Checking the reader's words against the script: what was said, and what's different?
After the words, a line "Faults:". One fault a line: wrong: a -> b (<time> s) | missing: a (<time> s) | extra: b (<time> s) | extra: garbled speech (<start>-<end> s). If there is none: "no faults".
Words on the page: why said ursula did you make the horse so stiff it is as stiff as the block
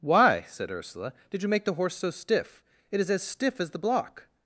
why said ursula did you make the horse so stiff it is as stiff as the block
Faults:
no faults